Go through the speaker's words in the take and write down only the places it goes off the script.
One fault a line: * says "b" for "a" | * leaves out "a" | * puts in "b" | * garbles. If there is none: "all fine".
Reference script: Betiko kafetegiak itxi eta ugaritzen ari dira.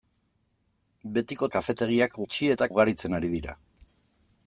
all fine